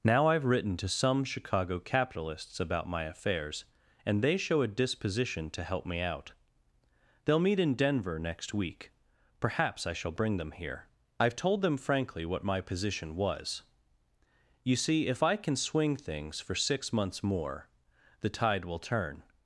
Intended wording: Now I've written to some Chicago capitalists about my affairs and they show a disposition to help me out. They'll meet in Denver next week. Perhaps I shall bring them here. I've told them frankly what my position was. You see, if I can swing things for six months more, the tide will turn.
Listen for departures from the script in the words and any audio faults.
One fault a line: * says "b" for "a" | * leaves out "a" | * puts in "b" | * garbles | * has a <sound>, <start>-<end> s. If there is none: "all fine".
all fine